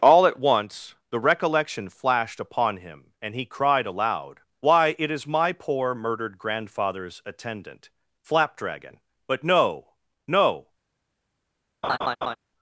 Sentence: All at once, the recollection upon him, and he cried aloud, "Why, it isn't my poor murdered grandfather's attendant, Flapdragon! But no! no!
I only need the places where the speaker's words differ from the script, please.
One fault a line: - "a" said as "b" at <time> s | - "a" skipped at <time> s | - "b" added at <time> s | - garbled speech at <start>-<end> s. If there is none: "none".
- "flashed" added at 1.9 s
- "isn't" said as "is" at 5.1 s